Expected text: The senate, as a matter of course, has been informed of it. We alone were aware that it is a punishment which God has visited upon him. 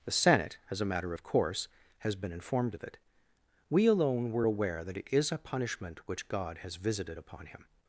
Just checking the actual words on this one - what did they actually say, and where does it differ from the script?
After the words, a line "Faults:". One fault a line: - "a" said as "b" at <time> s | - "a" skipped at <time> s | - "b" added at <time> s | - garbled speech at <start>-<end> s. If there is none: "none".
The senate, as a matter of course, has been informed of it. We alone were aware that it is a punishment which God has visited upon him.
Faults:
none